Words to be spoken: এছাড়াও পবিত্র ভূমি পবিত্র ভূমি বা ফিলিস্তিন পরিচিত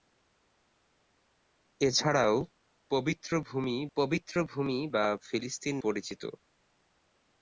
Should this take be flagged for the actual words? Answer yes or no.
no